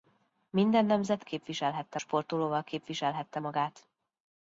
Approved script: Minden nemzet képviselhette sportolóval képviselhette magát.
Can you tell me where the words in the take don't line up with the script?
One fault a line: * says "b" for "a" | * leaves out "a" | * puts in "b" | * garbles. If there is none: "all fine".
all fine